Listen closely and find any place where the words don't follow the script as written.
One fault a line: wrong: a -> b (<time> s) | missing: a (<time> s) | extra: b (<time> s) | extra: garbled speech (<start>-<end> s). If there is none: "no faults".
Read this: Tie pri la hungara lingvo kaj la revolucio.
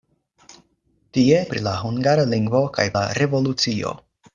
no faults